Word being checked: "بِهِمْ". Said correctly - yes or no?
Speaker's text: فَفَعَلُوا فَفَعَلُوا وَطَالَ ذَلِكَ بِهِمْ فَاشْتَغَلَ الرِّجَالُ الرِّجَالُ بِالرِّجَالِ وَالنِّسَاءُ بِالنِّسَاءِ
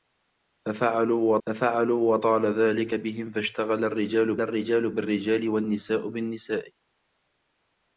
yes